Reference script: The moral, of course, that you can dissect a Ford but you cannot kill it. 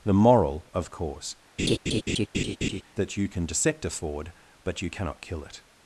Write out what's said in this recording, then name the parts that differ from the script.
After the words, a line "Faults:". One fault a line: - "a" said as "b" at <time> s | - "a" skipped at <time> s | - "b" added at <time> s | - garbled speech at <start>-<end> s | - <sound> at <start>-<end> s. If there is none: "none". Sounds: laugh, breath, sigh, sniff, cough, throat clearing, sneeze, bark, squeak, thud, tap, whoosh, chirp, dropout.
The moral, of course, that you can dissect a Ford but you cannot kill it.
Faults:
- laugh at 1.6-2.8 s